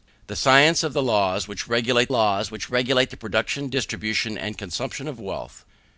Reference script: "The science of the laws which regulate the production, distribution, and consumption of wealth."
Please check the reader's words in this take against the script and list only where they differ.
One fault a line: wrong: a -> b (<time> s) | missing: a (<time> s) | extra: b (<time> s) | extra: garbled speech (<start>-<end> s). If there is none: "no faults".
extra: laws which regulate (2.1 s)